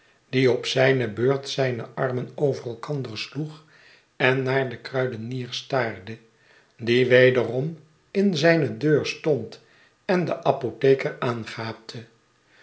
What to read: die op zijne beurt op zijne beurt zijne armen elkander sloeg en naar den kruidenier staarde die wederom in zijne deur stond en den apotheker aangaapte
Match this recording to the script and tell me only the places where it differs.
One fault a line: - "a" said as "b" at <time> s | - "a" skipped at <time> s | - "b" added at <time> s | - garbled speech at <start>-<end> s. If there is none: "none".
- "op" skipped at 1.5 s
- "beurt zijne armen" said as "armen over" at 1.9 s